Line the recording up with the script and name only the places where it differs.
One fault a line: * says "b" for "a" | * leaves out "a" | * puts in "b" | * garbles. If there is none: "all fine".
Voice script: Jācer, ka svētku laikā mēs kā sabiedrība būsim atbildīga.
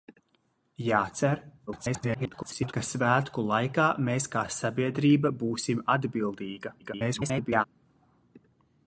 * garbles
* garbles